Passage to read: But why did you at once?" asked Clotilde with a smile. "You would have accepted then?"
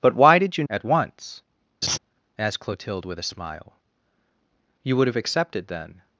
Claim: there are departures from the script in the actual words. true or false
false